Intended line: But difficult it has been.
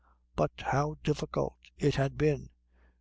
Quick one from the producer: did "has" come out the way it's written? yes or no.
no